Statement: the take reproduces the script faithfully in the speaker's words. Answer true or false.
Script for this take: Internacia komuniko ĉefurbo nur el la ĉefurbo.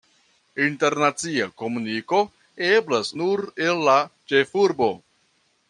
false